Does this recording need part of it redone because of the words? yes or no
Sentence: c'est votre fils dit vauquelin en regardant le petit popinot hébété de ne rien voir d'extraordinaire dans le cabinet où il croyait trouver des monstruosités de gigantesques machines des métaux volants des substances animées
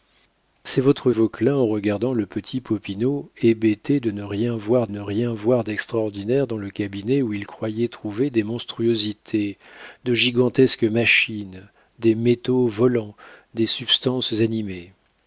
yes